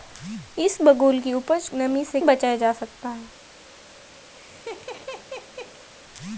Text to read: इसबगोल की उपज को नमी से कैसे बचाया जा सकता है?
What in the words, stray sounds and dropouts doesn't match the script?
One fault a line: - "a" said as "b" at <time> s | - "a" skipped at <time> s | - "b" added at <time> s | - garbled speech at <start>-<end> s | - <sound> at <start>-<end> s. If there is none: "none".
- "को" skipped at 1.7 s
- "कैसे" skipped at 2.2 s
- laugh at 4.3-5.9 s